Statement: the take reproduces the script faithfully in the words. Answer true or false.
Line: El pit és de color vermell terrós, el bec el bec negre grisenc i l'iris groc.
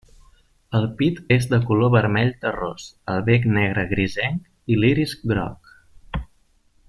false